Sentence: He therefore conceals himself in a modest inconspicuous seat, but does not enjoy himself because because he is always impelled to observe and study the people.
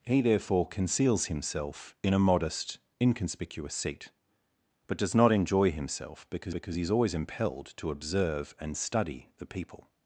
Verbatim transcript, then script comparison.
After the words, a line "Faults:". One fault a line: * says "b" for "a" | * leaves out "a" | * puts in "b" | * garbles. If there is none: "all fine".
He therefore conceals himself in a modest inconspicuous seat, but does not enjoy himself because because he is always impelled to observe and study the people.
Faults:
all fine